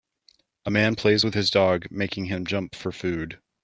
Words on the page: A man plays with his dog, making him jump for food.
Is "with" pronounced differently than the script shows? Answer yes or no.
no